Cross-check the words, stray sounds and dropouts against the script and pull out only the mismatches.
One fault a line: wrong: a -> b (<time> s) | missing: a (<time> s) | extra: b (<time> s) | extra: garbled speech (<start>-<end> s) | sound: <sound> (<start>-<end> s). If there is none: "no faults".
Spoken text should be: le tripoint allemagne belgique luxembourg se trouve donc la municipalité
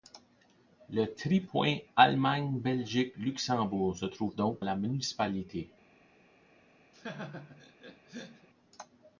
sound: laugh (6.9-8.5 s)